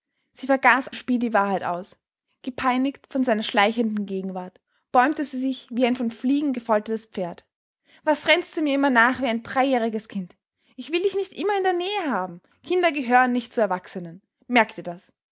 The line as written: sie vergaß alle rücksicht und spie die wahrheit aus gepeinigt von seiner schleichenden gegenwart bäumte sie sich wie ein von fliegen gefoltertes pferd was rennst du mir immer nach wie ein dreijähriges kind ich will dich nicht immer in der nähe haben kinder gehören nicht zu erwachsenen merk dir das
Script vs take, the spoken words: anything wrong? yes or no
yes